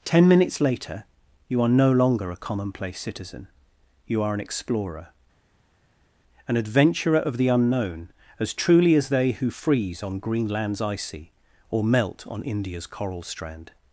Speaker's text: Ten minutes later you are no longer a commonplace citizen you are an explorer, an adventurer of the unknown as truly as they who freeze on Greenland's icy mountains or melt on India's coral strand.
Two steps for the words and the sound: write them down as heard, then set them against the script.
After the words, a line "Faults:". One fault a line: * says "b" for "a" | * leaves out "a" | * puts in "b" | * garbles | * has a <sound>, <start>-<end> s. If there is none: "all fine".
Ten minutes later you are no longer a commonplace citizen you are an explorer, an adventurer of the unknown as truly as they who freeze on Greenland's icy or melt on India's coral strand.
Faults:
* leaves out "mountains"